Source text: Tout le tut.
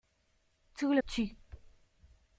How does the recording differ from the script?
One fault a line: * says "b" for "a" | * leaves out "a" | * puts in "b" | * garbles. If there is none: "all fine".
all fine